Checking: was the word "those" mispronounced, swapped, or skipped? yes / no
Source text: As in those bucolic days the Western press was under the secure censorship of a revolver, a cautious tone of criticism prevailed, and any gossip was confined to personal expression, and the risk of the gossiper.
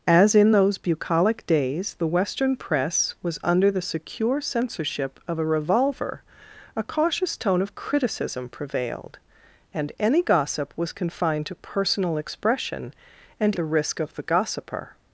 no